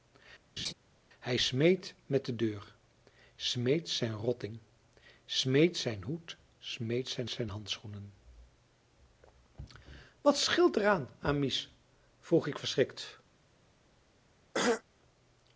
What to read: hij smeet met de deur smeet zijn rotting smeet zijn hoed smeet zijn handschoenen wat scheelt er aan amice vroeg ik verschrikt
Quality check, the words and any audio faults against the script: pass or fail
fail